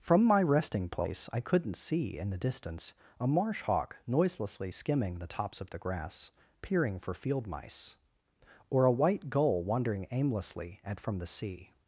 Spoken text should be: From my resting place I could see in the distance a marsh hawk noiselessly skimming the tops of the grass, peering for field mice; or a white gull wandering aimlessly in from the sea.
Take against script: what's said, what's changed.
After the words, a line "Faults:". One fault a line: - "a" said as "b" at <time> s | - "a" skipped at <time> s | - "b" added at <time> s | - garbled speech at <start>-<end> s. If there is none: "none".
From my resting place I couldn't see in the distance a marsh hawk noiselessly skimming the tops of the grass, peering for field mice; or a white gull wandering aimlessly at from the sea.
Faults:
- "could" said as "couldn't" at 1.4 s
- "in" said as "at" at 10.8 s